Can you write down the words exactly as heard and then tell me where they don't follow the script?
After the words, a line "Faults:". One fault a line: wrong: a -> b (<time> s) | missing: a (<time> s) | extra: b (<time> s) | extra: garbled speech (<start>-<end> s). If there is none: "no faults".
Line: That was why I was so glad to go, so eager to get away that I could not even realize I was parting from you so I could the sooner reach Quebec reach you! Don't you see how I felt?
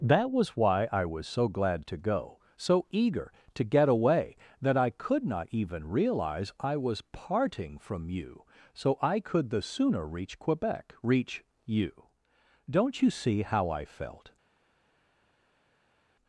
That was why I was so glad to go, so eager to get away that I could not even realize I was parting from you so I could the sooner reach Quebec reach you! Don't you see how I felt?
Faults:
no faults